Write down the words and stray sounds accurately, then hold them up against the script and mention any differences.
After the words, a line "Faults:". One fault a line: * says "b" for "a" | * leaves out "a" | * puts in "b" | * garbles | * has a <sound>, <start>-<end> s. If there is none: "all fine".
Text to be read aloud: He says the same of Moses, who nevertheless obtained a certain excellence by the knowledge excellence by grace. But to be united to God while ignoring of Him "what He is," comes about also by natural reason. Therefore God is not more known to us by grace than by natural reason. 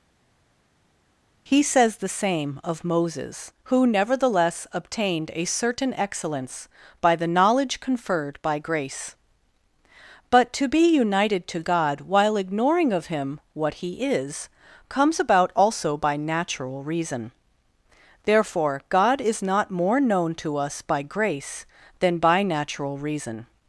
He says the same of Moses, who nevertheless obtained a certain excellence by the knowledge conferred by grace. But to be united to God while ignoring of Him "what He is," comes about also by natural reason. Therefore God is not more known to us by grace than by natural reason.
Faults:
* says "conferred" for "excellence"